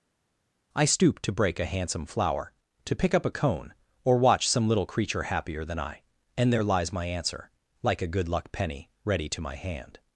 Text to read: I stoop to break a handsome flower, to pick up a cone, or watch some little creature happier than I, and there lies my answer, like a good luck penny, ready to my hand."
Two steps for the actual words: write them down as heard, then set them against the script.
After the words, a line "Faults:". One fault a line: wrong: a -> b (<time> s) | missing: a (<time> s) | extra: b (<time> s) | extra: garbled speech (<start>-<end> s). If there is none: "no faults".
I stoop to break a handsome flower, to pick up a cone, or watch some little creature happier than I, and there lies my answer, like a good luck penny, ready to my hand."
Faults:
no faults